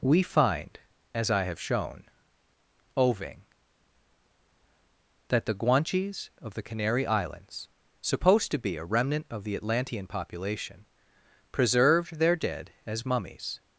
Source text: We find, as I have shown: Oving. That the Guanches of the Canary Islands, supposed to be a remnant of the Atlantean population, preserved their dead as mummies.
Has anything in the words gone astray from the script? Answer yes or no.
no